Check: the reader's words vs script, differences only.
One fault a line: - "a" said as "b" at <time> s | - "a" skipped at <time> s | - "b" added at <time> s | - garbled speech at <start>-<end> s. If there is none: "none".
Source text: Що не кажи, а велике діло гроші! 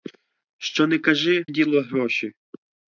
- "а велике" skipped at 1.4 s